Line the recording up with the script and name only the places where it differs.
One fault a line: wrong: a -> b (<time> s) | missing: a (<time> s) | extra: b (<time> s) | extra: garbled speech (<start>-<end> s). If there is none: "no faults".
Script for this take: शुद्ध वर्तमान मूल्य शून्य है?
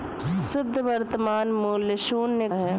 no faults